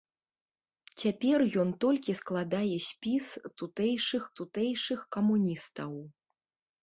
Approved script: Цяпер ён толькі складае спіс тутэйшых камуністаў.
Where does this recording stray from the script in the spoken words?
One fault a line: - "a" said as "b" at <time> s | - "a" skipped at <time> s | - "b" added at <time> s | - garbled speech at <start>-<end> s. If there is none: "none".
- "тутэйшых" added at 4.4 s